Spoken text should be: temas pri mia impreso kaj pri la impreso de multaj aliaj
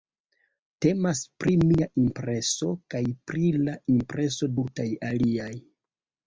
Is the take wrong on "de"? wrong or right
wrong